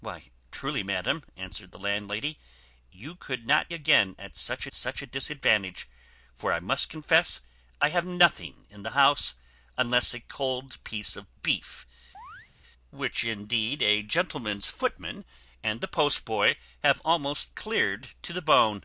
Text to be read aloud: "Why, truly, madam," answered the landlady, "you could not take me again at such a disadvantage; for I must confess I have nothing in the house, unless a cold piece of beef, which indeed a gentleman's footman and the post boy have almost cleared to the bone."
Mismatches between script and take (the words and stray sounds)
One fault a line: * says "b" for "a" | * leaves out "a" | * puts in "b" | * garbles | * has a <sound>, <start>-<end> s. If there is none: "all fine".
* leaves out "take me"
* puts in "such"
* has a chirp, 12.1-12.5 s